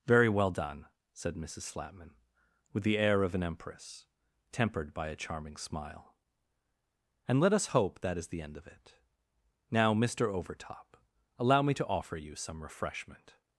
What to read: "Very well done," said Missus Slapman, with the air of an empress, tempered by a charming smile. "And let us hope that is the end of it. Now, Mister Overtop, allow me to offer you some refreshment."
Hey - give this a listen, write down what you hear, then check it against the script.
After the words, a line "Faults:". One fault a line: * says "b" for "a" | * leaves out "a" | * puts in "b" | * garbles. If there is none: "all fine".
"Very well done," said Missus Slapman, with the air of an empress, tempered by a charming smile. "And let us hope that is the end of it. Now, Mister Overtop, allow me to offer you some refreshment."
Faults:
all fine